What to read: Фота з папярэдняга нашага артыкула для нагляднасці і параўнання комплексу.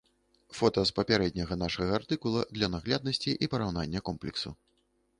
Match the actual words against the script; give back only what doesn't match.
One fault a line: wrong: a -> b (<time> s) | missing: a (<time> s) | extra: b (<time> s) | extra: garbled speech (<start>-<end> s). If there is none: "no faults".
no faults